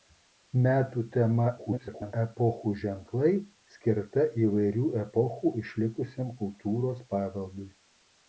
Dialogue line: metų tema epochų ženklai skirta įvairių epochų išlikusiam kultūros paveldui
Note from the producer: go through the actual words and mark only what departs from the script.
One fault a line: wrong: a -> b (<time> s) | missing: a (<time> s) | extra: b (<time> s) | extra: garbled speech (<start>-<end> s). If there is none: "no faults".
extra: garbled speech (1.6-2.1 s)